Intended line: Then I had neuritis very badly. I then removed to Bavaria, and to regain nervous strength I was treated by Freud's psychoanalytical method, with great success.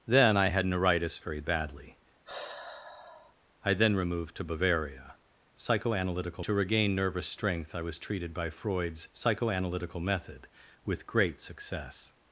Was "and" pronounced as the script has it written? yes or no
no